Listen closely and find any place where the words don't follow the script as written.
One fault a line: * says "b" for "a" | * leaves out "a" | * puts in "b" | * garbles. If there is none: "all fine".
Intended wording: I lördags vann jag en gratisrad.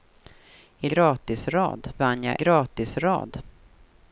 * says "gratisrad" for "lördags"
* leaves out "en"